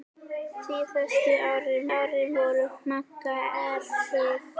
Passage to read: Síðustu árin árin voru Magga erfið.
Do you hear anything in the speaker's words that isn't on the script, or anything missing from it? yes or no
no